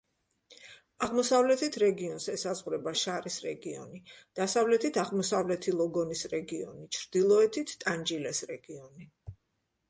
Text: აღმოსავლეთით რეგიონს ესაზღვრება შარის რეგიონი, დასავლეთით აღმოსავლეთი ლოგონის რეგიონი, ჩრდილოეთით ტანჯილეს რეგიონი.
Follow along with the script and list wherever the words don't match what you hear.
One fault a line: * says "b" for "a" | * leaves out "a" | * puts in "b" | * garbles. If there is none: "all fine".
all fine